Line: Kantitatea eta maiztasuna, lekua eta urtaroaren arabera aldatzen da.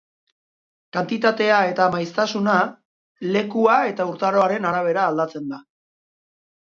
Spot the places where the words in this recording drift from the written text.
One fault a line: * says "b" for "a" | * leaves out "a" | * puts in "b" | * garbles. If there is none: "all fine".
all fine